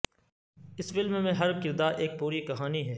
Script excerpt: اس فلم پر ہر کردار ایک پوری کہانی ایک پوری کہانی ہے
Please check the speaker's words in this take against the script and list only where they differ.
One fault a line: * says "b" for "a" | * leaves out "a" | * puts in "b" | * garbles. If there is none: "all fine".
* says "میں" for "پر"
* leaves out "ایک پوری کہانی"